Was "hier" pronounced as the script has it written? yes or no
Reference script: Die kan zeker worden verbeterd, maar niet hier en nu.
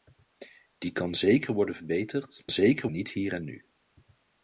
yes